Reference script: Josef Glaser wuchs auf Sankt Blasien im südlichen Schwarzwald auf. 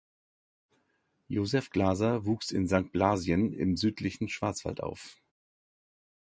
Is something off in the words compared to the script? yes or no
yes